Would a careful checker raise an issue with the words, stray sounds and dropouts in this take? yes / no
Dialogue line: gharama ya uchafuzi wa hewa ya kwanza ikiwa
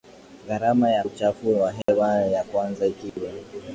yes